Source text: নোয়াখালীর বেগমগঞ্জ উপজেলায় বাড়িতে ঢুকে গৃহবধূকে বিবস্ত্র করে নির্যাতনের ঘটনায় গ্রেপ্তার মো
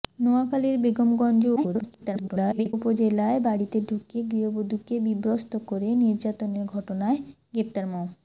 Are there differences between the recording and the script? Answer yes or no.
yes